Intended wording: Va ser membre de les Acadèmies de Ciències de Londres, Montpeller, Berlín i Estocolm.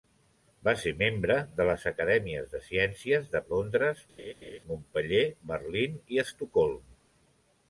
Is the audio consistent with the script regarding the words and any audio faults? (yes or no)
no